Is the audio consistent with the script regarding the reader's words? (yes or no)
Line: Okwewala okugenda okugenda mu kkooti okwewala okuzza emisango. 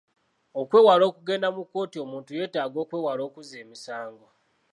no